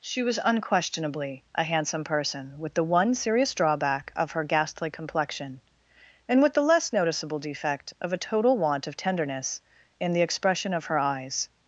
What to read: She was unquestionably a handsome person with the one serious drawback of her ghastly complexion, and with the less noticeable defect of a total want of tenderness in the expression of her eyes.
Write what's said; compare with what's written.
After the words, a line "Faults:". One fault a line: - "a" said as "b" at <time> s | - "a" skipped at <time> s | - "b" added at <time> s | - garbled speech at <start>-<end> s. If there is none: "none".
She was unquestionably a handsome person with the one serious drawback of her ghastly complexion, and with the less noticeable defect of a total want of tenderness in the expression of her eyes.
Faults:
none